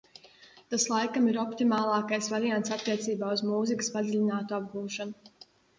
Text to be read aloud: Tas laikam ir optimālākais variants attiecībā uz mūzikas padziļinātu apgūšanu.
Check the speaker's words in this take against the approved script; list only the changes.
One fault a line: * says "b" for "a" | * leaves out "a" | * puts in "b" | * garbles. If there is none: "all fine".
all fine